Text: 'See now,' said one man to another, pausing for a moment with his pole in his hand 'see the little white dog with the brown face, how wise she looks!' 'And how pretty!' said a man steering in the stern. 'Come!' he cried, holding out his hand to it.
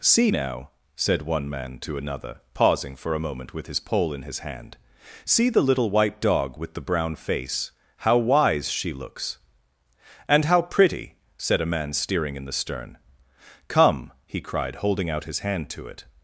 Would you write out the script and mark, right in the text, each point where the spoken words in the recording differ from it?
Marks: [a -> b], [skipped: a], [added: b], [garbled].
'See now,' said one man to another, pausing for a moment with his pole in his hand 'see the little white dog with the brown face, how wise she looks!' 'And how pretty!' said a man steering in the stern. 'Come!' he cried, holding out his hand to it.